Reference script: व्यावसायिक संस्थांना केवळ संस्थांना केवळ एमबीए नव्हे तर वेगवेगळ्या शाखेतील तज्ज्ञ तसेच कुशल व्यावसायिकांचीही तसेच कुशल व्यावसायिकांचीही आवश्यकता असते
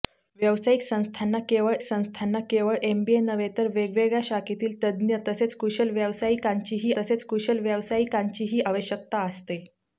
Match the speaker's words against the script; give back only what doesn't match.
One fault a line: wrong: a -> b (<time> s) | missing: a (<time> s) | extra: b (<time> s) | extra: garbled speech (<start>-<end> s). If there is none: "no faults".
no faults